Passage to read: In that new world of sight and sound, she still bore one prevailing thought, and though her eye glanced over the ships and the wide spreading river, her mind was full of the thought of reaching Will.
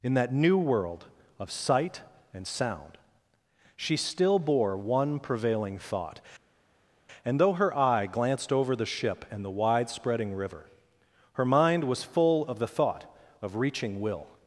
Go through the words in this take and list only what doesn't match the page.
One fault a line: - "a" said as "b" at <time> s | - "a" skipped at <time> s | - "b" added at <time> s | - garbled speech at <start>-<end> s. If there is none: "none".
- "ships" said as "ship" at 8.8 s